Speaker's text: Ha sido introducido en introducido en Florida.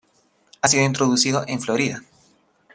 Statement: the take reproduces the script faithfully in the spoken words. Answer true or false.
false